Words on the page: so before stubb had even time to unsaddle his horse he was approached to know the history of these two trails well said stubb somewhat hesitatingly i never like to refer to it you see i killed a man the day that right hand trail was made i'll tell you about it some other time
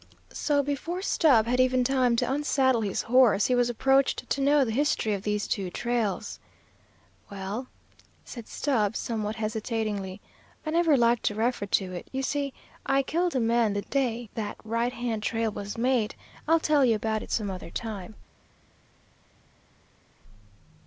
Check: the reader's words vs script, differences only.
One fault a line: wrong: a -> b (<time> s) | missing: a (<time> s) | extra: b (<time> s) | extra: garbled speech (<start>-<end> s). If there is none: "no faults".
no faults